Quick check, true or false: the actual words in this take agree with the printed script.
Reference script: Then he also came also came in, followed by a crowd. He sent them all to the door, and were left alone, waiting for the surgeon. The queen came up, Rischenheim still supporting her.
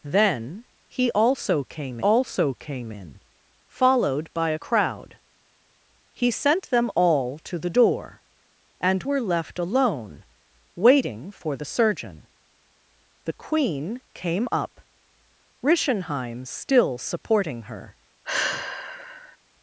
true